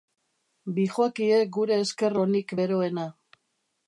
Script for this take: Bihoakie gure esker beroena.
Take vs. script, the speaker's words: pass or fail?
fail